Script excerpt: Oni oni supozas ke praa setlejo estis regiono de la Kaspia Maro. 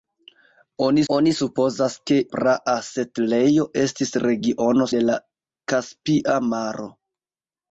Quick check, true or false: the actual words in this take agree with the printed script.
true